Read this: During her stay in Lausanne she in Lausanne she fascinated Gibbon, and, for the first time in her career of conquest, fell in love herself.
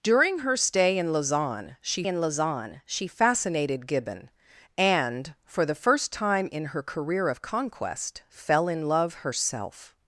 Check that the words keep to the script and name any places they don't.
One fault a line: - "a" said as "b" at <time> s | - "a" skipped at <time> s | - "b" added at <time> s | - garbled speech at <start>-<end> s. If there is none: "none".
none